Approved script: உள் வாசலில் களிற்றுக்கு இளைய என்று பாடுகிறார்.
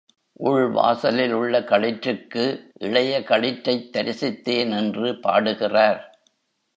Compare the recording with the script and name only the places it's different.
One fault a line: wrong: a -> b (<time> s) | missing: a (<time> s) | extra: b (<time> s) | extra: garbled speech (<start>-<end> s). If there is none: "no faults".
extra: உள்ள (1.3 s)
extra: களிற்றைத் தரிசித்தேன் (3.2 s)